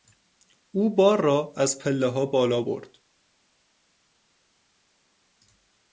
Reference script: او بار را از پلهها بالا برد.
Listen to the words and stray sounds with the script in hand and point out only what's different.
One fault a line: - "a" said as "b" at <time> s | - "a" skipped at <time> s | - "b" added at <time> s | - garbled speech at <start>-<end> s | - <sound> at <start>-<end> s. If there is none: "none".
none